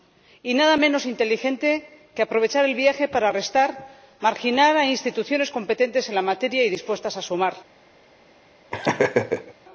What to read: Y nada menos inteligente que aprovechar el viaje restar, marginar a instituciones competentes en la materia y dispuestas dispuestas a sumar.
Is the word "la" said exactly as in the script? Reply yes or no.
yes